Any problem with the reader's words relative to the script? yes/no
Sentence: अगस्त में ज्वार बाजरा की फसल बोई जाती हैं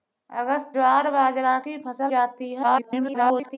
yes